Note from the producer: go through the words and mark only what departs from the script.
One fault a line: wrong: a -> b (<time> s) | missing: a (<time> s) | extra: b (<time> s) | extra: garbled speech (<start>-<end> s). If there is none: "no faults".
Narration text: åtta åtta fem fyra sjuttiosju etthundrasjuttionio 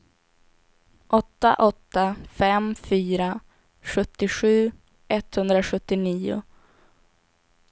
no faults